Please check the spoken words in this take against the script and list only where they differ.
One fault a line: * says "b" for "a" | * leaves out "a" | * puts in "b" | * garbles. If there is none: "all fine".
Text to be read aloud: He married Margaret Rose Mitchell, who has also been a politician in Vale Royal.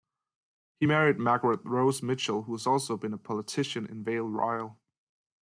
all fine